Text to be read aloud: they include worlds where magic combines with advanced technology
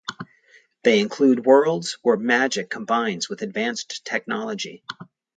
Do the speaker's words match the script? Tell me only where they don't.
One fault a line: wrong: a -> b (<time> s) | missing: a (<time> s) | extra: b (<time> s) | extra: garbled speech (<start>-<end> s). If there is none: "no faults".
no faults